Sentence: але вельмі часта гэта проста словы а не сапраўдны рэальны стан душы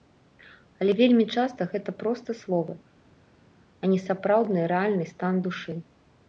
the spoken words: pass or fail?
pass